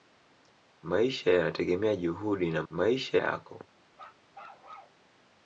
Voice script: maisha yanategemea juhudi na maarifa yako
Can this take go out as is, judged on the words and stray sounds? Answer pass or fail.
fail